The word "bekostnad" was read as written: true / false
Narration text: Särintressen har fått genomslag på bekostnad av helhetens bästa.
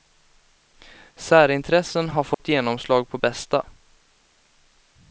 false